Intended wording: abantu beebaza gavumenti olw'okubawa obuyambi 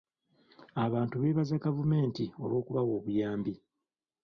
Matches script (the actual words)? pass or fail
pass